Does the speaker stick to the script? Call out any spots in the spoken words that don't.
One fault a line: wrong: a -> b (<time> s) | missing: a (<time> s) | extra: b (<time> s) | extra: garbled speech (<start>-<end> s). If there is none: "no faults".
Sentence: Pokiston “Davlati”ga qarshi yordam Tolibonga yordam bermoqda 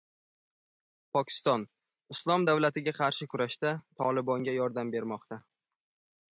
extra: Islom (2.1 s)
wrong: yordam -> kurashda (3.3 s)